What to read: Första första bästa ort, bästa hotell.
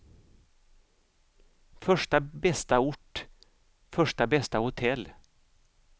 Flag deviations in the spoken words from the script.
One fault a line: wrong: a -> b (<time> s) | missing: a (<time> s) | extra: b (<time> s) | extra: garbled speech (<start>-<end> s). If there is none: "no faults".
missing: första (2.2 s)
extra: första (3.9 s)